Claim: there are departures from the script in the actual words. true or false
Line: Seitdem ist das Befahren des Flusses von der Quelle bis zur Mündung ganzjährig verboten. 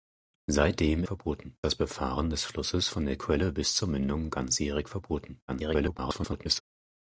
true